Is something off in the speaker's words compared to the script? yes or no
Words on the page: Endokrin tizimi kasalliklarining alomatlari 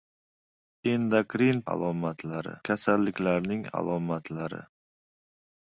yes